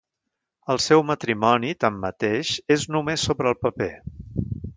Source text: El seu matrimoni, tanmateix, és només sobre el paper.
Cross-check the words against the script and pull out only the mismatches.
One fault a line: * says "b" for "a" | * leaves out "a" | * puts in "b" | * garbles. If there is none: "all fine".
all fine